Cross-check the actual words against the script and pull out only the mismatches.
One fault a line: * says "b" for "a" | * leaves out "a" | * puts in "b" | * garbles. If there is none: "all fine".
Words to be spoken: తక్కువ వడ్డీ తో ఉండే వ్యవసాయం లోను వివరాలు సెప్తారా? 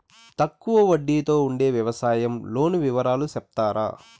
all fine